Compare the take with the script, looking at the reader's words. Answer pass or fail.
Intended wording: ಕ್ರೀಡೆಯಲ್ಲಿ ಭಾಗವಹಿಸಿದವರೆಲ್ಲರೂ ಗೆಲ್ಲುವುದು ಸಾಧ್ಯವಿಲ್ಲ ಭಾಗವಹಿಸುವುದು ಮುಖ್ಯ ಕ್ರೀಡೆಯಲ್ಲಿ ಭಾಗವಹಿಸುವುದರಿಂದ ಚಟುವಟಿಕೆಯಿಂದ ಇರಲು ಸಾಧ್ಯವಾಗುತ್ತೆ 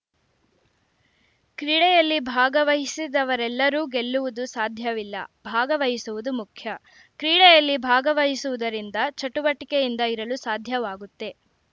pass